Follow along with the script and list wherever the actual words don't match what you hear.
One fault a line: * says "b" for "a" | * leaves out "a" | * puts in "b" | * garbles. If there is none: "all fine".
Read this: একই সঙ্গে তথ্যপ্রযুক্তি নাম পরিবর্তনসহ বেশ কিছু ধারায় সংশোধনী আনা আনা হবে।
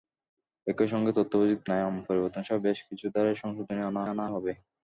all fine